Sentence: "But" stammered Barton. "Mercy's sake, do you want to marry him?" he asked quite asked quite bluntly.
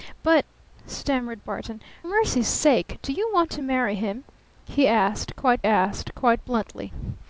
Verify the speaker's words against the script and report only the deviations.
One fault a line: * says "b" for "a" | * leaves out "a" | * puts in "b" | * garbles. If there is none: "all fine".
all fine